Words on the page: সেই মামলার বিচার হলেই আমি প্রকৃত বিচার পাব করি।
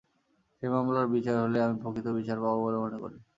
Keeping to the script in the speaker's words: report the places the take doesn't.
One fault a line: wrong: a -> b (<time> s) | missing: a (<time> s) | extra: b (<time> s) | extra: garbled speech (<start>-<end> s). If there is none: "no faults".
extra: বলে মনে (2.6 s)